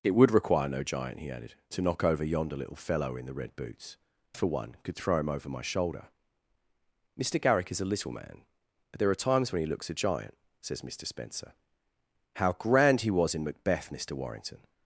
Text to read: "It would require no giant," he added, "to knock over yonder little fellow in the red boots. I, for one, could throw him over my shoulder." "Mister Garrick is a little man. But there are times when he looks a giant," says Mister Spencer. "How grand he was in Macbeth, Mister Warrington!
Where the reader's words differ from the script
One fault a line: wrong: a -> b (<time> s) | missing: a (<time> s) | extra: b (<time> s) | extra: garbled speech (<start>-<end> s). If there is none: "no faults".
missing: I (4.0 s)